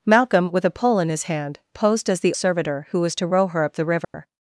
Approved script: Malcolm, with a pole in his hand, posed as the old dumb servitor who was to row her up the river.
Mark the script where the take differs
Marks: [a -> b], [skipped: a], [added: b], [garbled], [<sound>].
Malcolm, with a pole in his hand, posed as the [skipped: old dumb] servitor who was to row her up the river. [dropout]